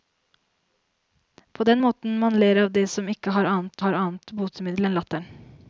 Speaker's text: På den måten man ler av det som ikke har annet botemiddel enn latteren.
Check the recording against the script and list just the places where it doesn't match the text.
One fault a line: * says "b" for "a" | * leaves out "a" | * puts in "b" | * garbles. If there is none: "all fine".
* puts in "har annet"